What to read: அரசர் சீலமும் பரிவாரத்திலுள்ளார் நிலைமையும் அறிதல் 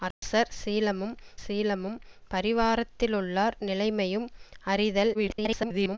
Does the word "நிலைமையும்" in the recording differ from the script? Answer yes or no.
no